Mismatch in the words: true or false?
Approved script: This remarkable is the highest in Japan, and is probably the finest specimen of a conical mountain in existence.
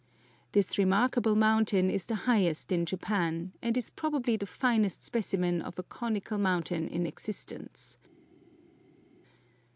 true